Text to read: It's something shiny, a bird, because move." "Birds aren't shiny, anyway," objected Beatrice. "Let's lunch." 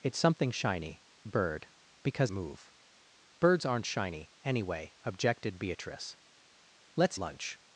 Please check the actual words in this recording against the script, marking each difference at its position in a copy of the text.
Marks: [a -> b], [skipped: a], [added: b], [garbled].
It's something shiny, a bird, because move." "Birds aren't shiny, anyway," objected Beatrice. "Let's lunch."